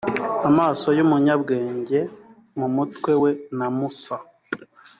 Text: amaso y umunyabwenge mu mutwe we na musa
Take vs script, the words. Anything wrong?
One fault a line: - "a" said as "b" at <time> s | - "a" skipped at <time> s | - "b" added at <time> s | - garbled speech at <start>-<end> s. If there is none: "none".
none